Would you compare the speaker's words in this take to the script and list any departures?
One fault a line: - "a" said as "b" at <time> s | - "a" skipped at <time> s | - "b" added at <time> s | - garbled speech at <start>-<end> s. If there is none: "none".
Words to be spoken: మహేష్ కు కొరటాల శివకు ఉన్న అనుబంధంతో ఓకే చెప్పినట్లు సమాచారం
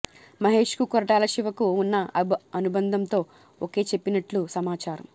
none